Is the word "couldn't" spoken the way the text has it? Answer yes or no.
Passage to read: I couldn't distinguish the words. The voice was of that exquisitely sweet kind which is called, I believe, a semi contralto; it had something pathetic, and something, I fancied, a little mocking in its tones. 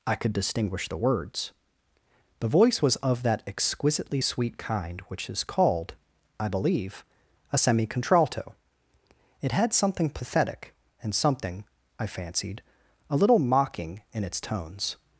no